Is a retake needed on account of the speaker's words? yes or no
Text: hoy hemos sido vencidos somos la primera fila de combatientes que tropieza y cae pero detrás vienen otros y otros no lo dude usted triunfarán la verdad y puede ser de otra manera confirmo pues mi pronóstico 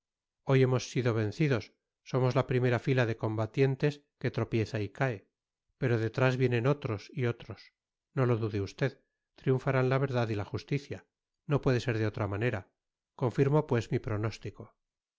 yes